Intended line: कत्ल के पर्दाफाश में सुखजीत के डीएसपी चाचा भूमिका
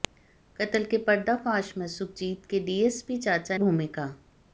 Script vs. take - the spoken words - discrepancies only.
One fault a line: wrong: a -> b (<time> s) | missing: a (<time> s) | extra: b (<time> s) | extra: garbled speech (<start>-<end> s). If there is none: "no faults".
no faults